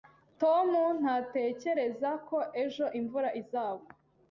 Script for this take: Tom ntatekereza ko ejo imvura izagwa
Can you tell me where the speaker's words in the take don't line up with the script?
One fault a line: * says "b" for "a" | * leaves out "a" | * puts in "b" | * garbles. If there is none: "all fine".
all fine